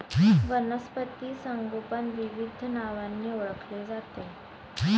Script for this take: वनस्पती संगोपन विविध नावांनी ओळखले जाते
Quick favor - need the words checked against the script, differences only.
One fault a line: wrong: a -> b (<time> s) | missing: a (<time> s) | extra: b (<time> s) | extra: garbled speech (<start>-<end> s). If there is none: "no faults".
no faults